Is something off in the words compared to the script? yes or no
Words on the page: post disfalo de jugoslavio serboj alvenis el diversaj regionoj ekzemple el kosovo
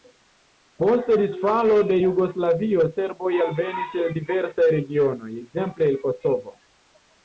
no